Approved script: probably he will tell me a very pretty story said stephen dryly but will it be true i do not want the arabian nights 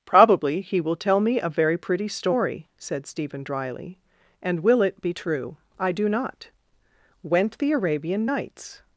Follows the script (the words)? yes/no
no